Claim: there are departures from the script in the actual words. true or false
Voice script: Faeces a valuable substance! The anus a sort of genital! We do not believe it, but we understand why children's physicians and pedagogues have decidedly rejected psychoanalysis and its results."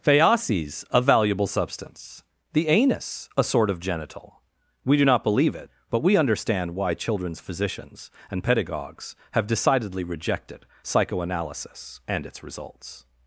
false